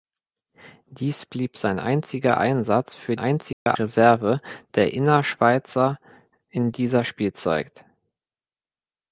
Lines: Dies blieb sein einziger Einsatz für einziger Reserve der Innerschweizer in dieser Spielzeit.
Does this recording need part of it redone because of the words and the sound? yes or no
yes